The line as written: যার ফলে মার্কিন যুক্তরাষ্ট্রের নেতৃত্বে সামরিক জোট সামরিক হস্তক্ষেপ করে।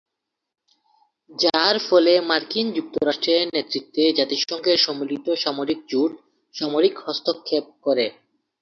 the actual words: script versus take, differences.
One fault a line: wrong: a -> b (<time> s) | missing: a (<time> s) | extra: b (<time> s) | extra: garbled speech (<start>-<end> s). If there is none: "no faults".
extra: জাতিসংঘের সম্মিলিত (4.2 s)